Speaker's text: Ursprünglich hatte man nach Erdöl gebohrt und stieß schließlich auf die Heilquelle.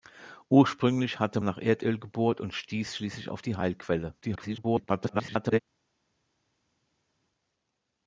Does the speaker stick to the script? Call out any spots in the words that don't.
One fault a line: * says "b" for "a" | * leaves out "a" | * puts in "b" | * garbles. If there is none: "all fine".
* leaves out "man"
* garbles